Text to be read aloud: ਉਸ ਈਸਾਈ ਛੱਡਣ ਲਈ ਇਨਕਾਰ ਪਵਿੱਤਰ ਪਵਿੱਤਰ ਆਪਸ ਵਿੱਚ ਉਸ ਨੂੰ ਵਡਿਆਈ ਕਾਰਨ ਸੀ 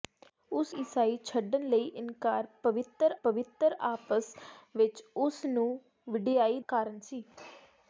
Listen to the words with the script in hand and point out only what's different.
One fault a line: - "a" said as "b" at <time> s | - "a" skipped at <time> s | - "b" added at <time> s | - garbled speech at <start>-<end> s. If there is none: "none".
none